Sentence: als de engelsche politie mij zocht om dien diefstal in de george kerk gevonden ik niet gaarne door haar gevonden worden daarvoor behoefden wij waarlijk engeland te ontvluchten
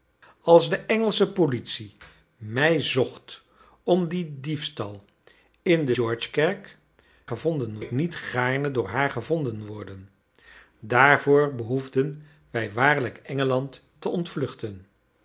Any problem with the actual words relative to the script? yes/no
no